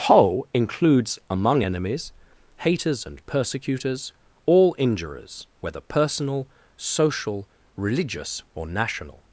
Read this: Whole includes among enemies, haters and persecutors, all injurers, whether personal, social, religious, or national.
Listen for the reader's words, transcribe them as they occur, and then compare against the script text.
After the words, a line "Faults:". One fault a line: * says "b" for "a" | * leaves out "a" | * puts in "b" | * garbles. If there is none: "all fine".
Whole includes among enemies, haters and persecutors, all injurers, whether personal, social, religious, or national.
Faults:
all fine